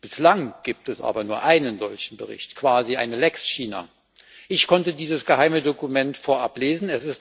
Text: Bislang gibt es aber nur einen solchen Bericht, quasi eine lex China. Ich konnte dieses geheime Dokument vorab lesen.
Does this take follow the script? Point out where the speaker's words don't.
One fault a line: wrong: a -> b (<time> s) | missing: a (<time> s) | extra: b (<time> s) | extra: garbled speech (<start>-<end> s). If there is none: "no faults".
no faults